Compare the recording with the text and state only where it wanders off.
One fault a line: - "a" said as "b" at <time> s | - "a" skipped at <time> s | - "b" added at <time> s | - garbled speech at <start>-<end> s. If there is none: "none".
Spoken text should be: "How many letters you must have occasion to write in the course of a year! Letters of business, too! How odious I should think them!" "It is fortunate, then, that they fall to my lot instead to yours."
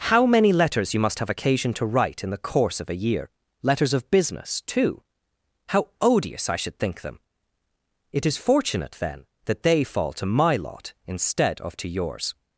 - "of" added at 11.6 s